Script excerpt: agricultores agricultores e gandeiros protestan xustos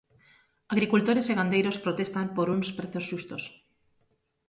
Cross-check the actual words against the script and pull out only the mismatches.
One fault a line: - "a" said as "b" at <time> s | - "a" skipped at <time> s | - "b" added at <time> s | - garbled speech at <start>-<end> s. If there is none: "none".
- "agricultores" skipped at 1.2 s
- "por uns prezos" added at 2.4 s